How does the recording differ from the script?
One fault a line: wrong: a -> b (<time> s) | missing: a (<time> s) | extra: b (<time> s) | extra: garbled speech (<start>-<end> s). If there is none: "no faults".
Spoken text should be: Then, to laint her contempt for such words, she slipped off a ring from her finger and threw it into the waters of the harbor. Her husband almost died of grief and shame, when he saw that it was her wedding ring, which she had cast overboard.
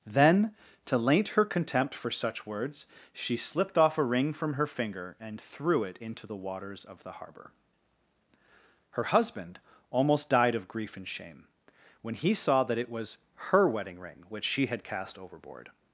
no faults